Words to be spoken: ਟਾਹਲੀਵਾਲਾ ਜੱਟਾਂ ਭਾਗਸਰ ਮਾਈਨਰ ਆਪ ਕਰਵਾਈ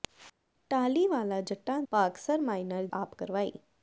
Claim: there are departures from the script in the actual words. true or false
false